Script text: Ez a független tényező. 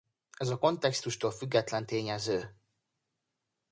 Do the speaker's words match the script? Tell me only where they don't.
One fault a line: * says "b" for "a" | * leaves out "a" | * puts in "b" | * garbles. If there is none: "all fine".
* puts in "kontextustól"